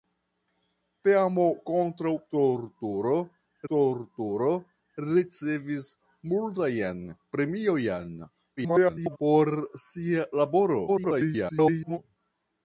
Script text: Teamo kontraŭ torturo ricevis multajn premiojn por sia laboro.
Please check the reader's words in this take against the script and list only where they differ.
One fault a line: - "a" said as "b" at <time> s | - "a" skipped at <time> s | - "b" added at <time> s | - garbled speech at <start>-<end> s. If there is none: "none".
- "torturo" added at 3.7 s
- garbled speech at 8.6-9.2 s
- garbled speech at 10.9-12.0 s